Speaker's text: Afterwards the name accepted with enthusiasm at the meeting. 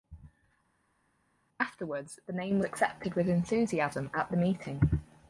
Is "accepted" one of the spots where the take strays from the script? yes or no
no